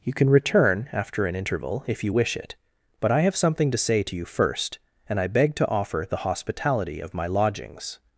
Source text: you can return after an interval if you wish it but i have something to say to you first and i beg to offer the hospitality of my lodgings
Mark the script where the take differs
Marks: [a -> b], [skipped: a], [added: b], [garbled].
you can return after an interval if you wish it but i have something to say to you first and i beg to offer the hospitality of my lodgings